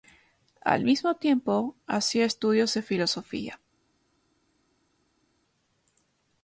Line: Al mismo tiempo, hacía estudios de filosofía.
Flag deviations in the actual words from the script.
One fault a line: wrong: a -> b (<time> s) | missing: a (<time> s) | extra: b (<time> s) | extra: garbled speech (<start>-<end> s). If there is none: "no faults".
no faults